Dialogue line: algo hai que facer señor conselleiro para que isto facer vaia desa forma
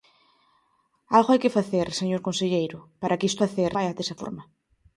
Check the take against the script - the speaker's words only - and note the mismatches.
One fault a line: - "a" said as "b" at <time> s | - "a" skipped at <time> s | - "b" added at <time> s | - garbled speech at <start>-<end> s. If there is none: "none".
none